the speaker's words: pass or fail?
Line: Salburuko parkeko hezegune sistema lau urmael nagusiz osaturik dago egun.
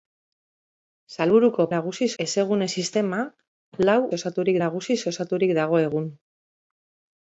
fail